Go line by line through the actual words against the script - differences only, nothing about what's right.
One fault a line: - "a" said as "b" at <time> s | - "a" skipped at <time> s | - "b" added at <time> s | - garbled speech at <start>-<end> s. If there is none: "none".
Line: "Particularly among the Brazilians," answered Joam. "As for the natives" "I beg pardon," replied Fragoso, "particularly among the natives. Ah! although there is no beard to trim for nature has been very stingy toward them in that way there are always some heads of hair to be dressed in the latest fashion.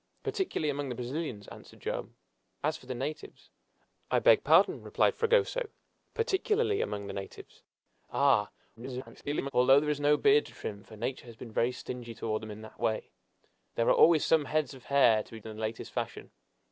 - garbled speech at 8.8-9.5 s
- "dressed" skipped at 15.4 s